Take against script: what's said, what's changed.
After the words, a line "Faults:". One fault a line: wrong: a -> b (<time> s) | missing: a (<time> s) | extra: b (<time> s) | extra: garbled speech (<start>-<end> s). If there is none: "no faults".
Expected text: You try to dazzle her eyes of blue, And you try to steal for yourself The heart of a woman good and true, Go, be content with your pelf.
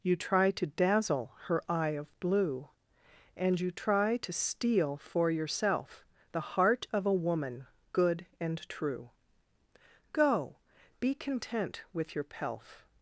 You try to dazzle her eye of blue, And you try to steal for yourself The heart of a woman good and true, Go, be content with your pelf.
Faults:
wrong: eyes -> eye (1.7 s)